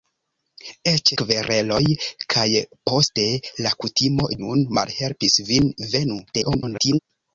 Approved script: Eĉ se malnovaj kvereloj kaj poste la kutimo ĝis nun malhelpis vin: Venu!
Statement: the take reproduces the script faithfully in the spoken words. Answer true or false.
false